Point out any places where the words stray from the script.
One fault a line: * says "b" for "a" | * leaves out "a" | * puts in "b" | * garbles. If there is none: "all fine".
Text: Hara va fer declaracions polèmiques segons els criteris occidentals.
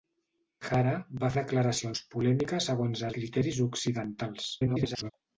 * leaves out "fer"
* leaves out "els"
* garbles